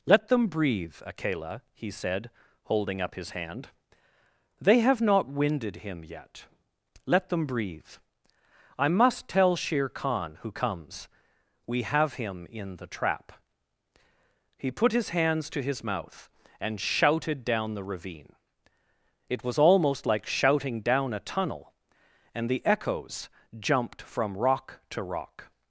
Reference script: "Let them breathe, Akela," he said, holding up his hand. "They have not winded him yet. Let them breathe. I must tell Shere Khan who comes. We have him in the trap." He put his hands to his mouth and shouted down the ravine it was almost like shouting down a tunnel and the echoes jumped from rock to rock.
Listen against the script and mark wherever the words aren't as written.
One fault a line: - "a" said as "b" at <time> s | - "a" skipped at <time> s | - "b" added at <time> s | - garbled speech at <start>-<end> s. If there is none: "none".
none